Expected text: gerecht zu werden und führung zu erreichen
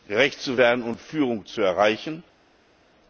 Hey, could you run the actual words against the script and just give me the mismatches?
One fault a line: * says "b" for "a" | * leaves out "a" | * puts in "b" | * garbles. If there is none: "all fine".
all fine